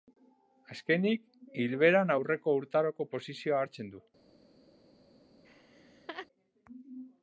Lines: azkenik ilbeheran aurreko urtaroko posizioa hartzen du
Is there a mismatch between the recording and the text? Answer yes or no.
no